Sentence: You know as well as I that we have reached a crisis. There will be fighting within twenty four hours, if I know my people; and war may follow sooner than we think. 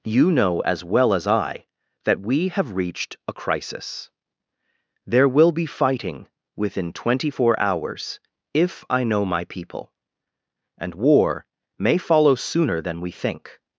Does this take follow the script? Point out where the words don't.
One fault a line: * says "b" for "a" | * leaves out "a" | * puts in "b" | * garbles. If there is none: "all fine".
all fine